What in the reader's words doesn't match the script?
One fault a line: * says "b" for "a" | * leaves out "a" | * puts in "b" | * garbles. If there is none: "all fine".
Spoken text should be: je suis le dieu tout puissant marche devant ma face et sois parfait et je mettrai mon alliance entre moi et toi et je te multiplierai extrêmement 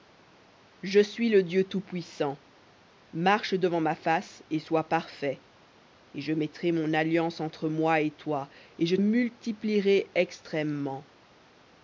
* leaves out "te"